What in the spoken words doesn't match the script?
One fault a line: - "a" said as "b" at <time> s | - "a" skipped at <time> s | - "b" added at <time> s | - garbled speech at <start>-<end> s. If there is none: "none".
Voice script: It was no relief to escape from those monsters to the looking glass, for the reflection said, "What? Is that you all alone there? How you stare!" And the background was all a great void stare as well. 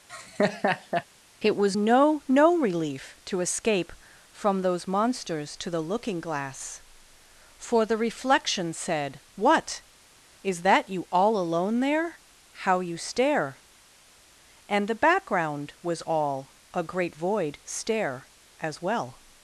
- "no" added at 2.3 s